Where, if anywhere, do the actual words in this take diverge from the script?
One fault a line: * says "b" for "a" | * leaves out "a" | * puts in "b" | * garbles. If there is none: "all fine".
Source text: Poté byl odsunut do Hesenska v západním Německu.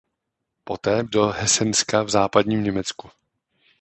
* leaves out "byl odsunut"